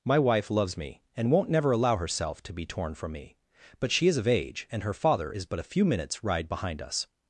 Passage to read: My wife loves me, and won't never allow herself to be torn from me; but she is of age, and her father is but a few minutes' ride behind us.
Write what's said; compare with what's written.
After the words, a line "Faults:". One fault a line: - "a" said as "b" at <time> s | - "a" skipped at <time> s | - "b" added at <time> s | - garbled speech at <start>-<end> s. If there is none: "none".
My wife loves me, and won't never allow herself to be torn from me; but she is of age, and her father is but a few minutes' ride behind us.
Faults:
none